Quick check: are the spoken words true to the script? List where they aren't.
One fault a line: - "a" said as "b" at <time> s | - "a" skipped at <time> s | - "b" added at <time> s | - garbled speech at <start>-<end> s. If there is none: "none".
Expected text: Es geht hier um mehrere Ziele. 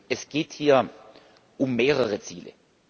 none